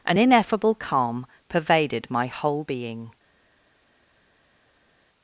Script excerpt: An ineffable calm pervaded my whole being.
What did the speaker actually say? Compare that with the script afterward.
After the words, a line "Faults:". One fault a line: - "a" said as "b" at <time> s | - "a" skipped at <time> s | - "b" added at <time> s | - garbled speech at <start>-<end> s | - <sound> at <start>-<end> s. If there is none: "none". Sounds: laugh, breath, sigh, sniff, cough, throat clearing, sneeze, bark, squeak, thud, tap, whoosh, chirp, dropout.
An ineffable calm pervaded my whole being.
Faults:
none